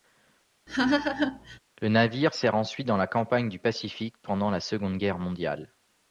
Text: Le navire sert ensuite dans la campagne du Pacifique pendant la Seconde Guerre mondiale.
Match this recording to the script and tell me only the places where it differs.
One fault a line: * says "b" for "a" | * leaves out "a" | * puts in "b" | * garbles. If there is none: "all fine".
all fine